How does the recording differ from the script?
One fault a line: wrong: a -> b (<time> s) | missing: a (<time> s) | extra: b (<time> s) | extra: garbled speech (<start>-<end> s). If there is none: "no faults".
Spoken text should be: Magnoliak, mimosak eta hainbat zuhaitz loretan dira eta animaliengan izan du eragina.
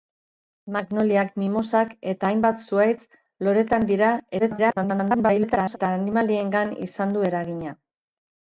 extra: garbled speech (4.4-5.8 s)